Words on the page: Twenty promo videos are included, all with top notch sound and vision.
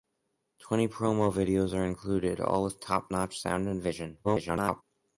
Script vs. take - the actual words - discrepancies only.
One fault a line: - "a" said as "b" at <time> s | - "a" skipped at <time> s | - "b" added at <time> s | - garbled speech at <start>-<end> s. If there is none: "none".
- garbled speech at 4.2-4.8 s